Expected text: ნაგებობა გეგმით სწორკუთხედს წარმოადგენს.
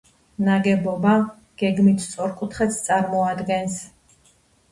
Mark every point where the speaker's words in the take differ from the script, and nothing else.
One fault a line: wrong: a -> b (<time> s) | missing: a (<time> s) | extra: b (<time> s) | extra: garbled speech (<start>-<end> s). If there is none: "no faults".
no faults